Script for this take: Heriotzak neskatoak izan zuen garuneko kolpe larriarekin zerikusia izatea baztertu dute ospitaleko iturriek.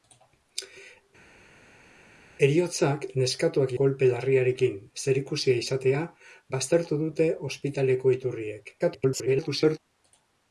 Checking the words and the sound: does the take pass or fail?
fail